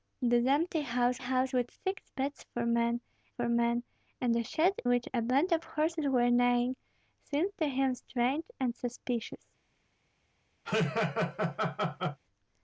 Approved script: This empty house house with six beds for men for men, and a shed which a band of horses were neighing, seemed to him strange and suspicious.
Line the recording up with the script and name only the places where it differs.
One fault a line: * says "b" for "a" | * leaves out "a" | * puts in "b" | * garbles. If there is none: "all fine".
all fine